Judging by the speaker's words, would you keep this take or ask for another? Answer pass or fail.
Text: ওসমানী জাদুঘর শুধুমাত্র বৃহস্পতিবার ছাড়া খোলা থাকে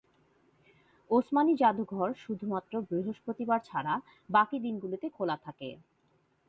fail